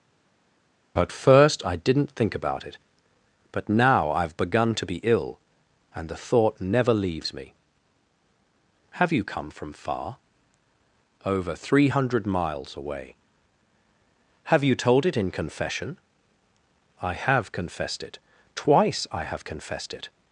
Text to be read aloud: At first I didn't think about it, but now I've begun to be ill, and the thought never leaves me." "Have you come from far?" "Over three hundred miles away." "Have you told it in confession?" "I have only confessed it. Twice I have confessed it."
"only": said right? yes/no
no